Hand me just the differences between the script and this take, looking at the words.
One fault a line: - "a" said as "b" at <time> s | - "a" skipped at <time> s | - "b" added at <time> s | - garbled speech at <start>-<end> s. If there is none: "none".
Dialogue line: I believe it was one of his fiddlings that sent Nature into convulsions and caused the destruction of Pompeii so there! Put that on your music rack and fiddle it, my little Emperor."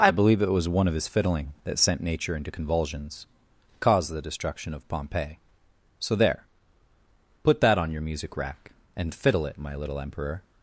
- "fiddlings" said as "fiddling" at 1.1 s
- "and" skipped at 3.3 s